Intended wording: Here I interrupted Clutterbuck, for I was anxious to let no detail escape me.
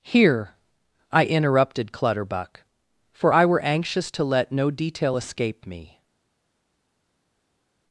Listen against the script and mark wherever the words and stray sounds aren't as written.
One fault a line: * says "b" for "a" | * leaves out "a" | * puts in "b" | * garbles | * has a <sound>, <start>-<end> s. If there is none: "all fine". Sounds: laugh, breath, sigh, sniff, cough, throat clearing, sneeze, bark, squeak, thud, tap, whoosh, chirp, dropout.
* says "were" for "was"